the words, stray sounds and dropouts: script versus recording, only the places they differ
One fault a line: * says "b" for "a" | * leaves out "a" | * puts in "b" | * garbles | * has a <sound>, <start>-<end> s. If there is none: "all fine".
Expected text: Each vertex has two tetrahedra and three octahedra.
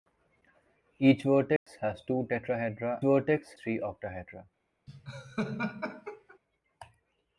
* has a dropout, 1.6-1.7 s
* says "vertex" for "and"
* has a laugh, 4.9-6.4 s